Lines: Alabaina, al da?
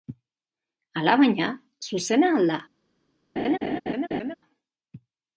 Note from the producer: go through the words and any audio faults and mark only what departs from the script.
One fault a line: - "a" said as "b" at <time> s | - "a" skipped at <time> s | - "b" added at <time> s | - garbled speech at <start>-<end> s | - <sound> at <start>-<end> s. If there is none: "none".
- "zuzena" added at 1.9 s
- laugh at 3.4-4.3 s